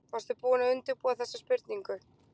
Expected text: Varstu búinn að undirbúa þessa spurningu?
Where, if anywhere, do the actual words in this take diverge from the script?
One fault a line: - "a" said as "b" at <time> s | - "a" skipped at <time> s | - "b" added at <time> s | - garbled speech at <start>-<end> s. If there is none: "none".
none